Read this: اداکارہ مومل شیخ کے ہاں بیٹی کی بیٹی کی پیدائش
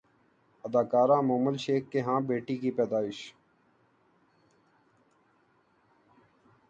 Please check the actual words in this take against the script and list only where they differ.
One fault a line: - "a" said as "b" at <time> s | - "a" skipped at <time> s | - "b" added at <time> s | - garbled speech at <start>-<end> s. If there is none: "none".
- "بیٹی کی" skipped at 2.7 s